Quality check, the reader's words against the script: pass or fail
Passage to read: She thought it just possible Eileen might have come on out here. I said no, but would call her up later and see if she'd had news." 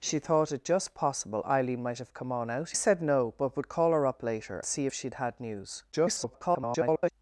fail